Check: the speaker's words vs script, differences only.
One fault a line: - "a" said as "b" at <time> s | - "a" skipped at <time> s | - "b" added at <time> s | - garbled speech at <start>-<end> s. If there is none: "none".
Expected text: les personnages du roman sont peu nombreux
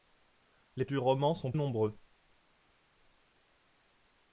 - "personnages" skipped at 0.8 s
- "peu" skipped at 1.5 s